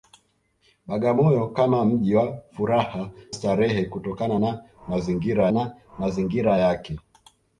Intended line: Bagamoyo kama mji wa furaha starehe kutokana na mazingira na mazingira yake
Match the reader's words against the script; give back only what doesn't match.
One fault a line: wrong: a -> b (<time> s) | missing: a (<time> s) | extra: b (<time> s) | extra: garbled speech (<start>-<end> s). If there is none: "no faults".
no faults